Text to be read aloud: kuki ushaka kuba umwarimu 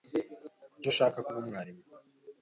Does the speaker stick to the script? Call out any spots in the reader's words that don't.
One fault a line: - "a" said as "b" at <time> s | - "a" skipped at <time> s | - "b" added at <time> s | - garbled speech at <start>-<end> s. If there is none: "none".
none